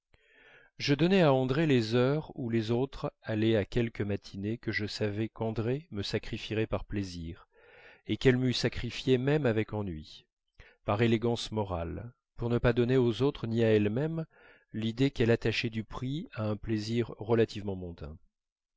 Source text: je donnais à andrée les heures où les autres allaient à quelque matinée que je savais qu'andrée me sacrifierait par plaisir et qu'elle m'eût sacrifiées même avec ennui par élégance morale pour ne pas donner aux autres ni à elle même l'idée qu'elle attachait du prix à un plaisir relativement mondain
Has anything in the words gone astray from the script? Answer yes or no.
no